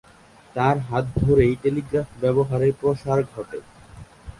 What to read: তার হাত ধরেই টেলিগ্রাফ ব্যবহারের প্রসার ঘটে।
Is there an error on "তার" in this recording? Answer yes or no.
no